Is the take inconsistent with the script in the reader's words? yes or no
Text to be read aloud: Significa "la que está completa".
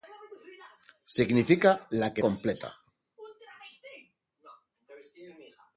yes